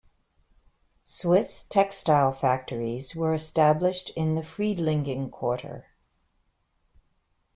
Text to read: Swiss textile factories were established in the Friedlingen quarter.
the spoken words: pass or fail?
pass